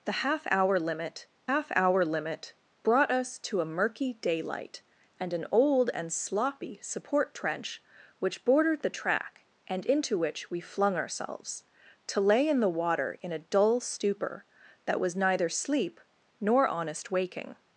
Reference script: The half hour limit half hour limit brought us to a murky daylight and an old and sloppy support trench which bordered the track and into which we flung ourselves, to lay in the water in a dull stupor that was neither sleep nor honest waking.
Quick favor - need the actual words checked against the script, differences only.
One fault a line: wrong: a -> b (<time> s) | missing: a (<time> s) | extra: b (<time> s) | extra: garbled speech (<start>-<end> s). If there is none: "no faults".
no faults